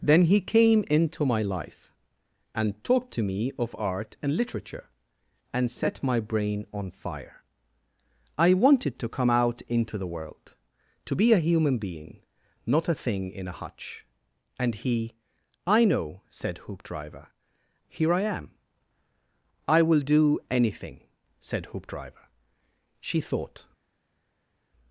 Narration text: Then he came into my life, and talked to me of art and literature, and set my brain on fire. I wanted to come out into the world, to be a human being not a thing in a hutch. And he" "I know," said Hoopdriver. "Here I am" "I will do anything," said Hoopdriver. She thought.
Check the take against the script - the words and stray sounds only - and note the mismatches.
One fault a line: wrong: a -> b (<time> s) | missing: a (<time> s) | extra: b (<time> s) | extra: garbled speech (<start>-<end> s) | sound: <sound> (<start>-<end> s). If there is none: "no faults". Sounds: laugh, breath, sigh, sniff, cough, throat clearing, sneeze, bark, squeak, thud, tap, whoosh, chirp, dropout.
no faults